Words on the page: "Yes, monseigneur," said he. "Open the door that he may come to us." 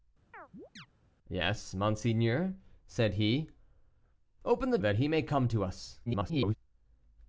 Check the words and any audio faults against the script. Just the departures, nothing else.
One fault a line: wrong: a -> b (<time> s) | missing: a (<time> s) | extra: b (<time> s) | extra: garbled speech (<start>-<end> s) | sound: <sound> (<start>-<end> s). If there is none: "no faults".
sound: chirp (0.3-0.9 s)
missing: door (4.8 s)
extra: garbled speech (6.1-6.6 s)